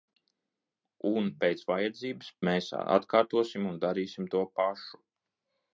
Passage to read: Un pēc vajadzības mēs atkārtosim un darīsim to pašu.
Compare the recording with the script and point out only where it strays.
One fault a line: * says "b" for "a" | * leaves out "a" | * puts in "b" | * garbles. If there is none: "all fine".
all fine